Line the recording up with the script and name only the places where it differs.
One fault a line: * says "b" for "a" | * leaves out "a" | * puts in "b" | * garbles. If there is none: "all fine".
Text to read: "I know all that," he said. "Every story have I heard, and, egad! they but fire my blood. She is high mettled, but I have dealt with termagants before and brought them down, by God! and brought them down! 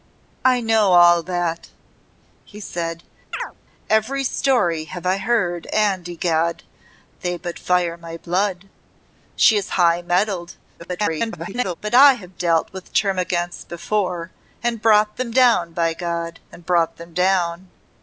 * garbles